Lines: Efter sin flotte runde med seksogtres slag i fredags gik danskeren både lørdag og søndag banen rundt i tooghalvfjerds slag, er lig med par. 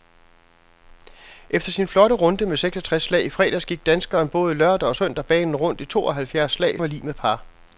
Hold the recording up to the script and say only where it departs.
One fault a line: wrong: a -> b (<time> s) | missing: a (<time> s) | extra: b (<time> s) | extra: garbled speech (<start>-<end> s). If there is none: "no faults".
no faults